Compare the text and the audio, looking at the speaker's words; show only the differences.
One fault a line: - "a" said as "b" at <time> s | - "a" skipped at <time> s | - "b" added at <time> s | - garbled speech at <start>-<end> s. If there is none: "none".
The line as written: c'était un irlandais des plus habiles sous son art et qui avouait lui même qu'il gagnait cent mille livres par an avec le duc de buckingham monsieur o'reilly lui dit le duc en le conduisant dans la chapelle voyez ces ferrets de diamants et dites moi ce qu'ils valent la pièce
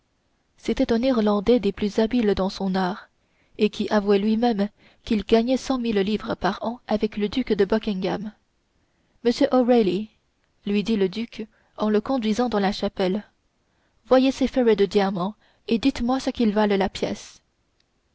- "sous" said as "dans" at 2.3 s